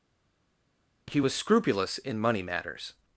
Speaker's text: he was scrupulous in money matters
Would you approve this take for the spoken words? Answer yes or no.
yes